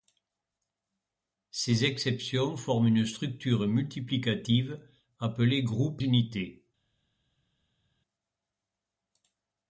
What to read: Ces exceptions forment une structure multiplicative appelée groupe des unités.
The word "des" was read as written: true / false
false